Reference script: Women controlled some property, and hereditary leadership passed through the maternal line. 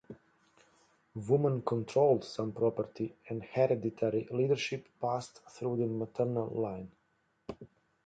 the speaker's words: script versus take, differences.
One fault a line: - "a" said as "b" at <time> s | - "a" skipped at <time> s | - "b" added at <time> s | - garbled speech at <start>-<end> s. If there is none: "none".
none